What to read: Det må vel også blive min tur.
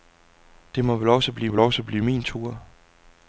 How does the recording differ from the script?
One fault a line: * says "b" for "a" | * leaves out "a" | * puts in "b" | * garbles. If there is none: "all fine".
* puts in "vel også blive"